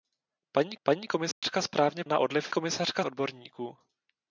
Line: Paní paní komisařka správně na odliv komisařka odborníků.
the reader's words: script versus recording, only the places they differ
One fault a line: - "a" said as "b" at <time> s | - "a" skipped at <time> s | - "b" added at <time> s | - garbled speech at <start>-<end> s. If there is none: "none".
none